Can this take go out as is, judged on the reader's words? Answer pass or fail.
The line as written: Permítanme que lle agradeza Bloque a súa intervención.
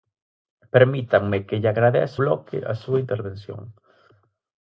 pass